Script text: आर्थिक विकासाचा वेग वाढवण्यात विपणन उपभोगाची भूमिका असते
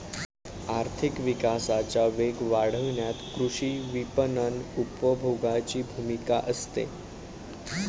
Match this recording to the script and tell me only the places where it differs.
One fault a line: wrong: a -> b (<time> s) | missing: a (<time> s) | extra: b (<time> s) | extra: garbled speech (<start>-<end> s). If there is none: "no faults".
extra: कृषी (3.4 s)